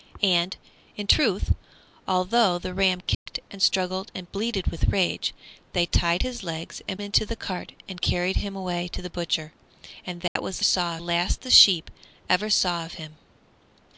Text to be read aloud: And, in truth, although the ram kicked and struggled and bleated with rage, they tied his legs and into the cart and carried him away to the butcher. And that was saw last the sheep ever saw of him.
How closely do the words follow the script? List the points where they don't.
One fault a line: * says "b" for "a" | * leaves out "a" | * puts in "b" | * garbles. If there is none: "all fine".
all fine